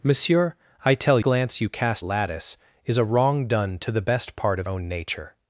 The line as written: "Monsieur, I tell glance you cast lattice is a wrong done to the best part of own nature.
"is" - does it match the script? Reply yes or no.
yes